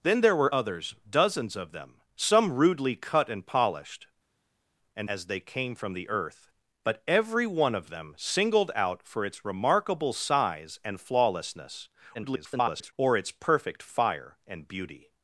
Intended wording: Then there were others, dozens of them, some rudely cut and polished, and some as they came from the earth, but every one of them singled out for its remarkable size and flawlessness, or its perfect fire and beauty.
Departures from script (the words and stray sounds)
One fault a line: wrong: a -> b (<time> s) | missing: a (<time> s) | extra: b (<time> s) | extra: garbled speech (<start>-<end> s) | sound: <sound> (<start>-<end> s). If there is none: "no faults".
missing: some (5.1 s)
extra: garbled speech (12.1-12.9 s)